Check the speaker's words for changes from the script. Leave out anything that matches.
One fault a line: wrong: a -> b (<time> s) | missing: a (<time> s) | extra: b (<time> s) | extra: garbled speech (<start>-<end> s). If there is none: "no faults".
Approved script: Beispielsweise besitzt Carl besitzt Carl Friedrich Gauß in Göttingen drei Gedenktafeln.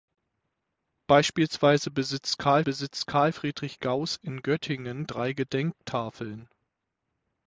no faults